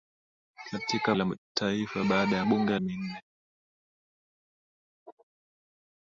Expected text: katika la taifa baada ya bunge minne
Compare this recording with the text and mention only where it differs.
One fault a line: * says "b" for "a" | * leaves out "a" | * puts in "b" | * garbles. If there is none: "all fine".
all fine